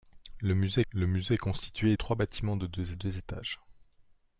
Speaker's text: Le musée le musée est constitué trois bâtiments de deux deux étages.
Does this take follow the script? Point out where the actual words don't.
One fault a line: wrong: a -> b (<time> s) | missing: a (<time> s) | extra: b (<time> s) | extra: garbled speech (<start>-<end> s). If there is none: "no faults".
no faults